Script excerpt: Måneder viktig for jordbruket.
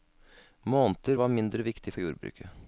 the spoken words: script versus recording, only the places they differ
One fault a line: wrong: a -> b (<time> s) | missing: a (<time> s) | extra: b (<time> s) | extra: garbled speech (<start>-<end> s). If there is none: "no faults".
extra: var mindre (1.1 s)